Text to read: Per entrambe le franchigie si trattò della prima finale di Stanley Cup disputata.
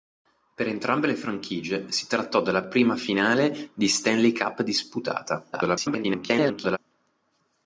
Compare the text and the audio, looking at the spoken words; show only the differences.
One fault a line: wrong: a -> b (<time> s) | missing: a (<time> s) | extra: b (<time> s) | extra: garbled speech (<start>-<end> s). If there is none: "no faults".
extra: garbled speech (5.5-6.8 s)